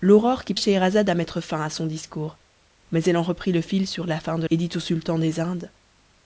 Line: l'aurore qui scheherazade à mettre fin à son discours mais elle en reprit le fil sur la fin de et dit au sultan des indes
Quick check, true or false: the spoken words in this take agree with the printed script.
true